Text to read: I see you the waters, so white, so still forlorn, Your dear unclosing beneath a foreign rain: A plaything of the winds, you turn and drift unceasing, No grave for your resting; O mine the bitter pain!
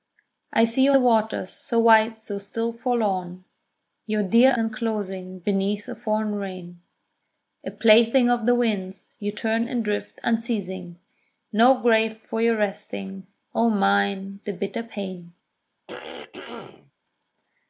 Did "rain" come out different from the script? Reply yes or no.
no